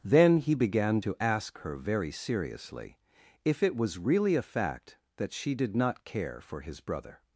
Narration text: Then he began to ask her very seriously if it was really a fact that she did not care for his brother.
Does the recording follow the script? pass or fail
pass